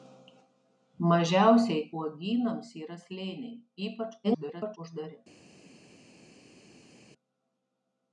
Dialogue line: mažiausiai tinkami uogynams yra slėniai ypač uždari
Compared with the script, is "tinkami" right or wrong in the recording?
wrong